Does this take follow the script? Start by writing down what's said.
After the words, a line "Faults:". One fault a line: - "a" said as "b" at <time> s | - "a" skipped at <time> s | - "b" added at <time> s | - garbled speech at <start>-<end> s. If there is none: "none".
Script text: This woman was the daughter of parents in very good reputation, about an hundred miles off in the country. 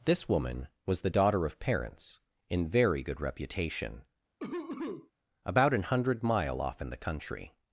This woman was the daughter of parents in very good reputation, about an hundred mile off in the country.
Faults:
- "miles" said as "mile" at 6.2 s